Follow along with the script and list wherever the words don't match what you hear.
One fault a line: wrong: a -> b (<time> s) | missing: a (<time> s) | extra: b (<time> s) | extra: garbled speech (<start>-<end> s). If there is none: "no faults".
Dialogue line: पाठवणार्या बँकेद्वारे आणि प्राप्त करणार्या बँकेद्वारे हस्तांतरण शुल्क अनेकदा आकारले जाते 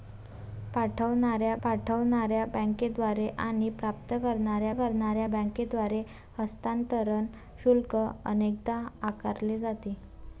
extra: पाठवणार्या (1.6 s)
extra: करणार्या (4.7 s)